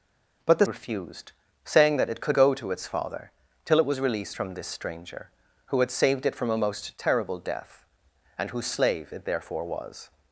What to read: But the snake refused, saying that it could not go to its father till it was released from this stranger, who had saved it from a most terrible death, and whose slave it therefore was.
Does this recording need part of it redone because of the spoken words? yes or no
yes